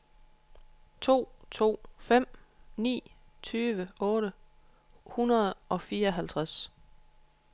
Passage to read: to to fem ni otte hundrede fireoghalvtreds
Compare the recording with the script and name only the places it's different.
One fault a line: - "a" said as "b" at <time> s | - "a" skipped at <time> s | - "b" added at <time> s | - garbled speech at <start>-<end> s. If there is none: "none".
- "tyve" added at 3.4 s
- "og" added at 5.7 s